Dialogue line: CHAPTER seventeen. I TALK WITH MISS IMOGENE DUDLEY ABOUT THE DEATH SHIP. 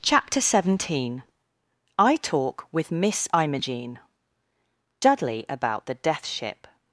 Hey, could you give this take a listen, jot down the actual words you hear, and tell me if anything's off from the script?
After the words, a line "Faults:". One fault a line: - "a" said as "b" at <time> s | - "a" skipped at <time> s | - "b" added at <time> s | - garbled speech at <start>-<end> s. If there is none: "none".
CHAPTER seventeen. I TALK WITH MISS IMOGENE DUDLEY ABOUT THE DEATH SHIP.
Faults:
none